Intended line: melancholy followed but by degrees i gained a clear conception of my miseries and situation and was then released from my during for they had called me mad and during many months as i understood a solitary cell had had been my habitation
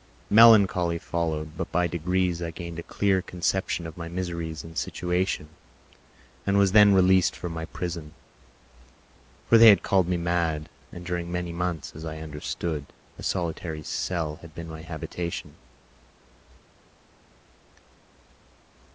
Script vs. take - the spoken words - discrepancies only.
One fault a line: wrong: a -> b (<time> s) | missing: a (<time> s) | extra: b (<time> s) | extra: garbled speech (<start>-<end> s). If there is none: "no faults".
wrong: during -> prison (7.7 s)
missing: had (14.6 s)